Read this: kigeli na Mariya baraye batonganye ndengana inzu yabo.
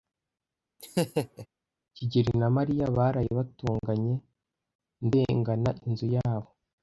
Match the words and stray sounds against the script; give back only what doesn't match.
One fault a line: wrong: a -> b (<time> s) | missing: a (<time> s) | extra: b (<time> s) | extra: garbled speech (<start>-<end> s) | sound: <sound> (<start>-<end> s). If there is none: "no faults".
sound: laugh (0.8-1.5 s)